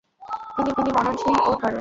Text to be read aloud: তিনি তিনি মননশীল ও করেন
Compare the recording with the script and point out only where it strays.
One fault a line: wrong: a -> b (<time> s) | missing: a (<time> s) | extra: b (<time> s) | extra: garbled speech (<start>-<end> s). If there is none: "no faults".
no faults